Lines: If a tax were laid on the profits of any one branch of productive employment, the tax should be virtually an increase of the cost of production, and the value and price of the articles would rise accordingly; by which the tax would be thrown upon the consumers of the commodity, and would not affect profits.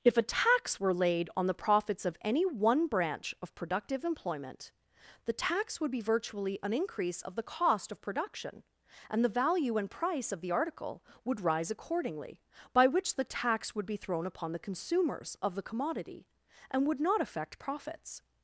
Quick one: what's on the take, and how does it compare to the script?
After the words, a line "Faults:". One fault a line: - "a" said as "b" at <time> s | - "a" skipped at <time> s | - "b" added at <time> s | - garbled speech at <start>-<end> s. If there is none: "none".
If a tax were laid on the profits of any one branch of productive employment, the tax would be virtually an increase of the cost of production, and the value and price of the article would rise accordingly; by which the tax would be thrown upon the consumers of the commodity, and would not affect profits.
Faults:
- "should" said as "would" at 5.8 s
- "articles" said as "article" at 10.5 s